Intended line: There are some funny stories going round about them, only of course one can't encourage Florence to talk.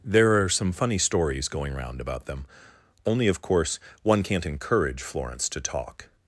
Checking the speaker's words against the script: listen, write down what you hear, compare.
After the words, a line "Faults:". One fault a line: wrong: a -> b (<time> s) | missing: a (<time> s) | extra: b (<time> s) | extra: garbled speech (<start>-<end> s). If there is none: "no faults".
There are some funny stories going round about them, only of course one can't encourage Florence to talk.
Faults:
no faults